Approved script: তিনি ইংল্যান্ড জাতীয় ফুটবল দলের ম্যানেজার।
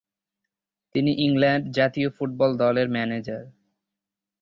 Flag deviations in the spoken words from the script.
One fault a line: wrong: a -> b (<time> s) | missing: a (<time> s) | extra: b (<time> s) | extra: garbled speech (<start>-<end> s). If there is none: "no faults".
no faults